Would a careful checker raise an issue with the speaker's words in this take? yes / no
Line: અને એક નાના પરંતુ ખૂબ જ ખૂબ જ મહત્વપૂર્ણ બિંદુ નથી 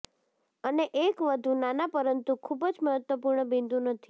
yes